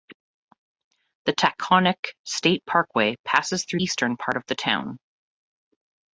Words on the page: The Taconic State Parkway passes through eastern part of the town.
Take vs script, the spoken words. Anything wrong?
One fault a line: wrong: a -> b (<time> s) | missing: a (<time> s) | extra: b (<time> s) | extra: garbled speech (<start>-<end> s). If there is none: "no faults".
no faults